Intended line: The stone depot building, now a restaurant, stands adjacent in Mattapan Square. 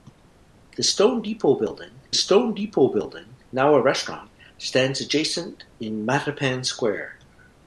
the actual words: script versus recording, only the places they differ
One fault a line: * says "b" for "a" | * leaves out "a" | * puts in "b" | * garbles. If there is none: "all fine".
* puts in "stone depot building"